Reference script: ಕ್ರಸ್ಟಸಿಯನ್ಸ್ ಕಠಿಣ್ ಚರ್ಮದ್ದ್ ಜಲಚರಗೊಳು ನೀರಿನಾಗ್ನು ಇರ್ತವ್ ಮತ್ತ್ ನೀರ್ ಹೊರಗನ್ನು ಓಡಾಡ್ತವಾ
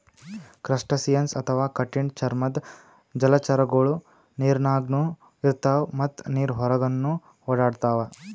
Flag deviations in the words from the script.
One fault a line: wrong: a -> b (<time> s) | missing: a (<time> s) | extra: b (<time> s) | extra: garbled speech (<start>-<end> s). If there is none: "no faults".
extra: ಅಥವಾ (1.4 s)